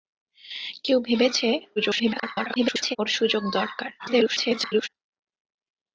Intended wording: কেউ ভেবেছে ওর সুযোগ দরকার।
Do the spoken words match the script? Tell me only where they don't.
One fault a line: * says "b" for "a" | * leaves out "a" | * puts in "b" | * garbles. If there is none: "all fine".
* garbles
* garbles